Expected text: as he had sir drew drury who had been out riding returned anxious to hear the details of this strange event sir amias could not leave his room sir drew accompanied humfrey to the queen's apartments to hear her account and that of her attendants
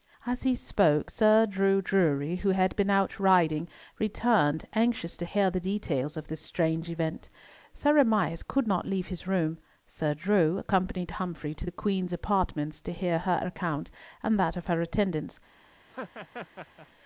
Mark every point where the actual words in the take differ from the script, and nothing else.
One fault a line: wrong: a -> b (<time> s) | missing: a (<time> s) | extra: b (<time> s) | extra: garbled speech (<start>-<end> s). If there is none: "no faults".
wrong: had -> spoke (0.6 s)